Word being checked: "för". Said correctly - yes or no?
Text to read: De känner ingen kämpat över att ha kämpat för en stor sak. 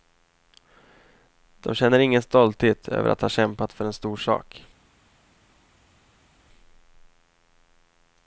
yes